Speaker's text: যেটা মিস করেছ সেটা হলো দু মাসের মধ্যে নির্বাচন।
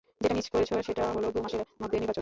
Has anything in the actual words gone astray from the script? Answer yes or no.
no